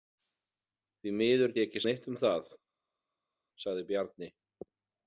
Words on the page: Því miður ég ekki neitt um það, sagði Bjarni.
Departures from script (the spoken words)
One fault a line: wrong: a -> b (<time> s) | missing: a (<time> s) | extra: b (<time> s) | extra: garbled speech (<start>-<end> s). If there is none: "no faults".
no faults